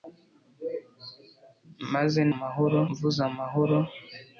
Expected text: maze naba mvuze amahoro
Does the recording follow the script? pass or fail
fail